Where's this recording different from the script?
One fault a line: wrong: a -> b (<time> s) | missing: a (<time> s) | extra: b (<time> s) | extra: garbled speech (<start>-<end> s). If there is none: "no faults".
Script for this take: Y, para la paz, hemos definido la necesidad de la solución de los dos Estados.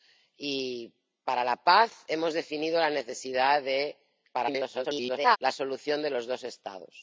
extra: garbled speech (4.3-5.4 s)